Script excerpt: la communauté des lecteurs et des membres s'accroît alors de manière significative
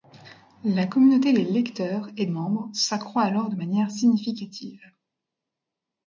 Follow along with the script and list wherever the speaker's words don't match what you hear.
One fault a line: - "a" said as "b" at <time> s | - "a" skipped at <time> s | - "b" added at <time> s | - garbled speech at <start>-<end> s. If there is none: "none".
- "des" skipped at 2.2 s